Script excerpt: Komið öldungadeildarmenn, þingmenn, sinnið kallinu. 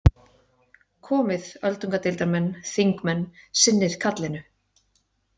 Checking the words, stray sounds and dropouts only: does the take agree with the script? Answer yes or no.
yes